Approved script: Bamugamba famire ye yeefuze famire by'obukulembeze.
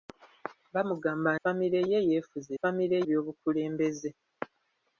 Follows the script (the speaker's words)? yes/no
yes